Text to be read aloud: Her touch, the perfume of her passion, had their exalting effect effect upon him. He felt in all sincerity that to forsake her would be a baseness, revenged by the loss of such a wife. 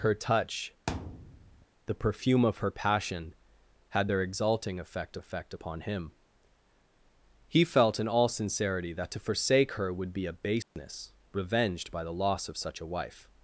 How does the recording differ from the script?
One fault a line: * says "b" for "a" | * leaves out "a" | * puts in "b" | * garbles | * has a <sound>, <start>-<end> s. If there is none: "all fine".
* has a thud, 0.9-1.7 s
* has a dropout, 10.6-10.8 s